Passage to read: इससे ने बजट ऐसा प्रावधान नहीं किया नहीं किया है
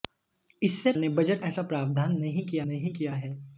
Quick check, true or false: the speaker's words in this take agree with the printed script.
true